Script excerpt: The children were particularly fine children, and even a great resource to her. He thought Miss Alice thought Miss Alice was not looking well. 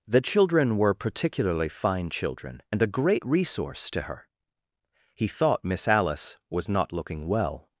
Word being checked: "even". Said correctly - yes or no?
no